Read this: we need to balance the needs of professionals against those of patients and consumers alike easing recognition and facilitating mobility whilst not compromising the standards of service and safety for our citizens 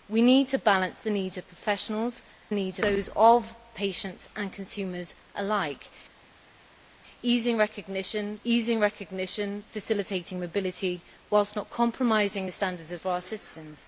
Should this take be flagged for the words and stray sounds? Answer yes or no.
yes